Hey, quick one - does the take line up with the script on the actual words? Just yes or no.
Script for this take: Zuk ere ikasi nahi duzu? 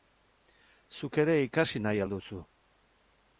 no